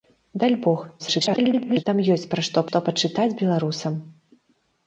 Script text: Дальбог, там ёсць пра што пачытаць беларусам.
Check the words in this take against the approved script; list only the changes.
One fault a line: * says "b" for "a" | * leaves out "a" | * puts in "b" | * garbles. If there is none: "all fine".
* garbles
* puts in "што"